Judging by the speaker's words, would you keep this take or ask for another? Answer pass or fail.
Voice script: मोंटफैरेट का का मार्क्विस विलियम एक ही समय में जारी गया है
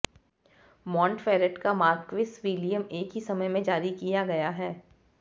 fail